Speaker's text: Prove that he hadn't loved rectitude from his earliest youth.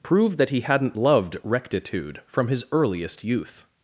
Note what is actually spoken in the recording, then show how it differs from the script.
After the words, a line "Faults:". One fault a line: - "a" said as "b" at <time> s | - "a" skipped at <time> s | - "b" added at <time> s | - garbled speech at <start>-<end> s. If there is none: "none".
Prove that he hadn't loved rectitude from his earliest youth.
Faults:
none